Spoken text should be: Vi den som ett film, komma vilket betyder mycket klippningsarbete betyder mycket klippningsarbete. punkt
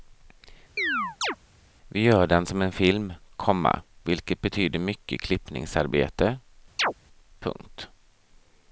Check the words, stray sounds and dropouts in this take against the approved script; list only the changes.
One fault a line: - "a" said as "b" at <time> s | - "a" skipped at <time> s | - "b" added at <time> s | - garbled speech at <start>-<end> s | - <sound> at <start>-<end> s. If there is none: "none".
- chirp at 0.8-1.4 s
- "gör" added at 2.0 s
- "ett" said as "en" at 2.6 s
- "betyder mycket klippningsarbete" skipped at 6.4 s
- chirp at 6.8-6.9 s